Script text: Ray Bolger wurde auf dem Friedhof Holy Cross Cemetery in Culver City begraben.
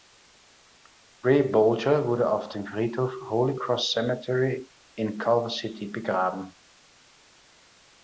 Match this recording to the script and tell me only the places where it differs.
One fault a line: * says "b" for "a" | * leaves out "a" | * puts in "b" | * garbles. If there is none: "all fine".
all fine